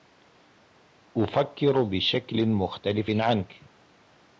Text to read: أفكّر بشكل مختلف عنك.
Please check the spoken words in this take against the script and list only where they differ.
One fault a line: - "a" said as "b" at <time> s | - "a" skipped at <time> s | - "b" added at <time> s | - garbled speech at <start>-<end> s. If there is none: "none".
none